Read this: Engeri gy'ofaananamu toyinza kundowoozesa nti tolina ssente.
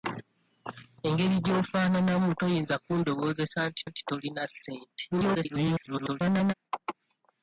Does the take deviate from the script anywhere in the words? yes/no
yes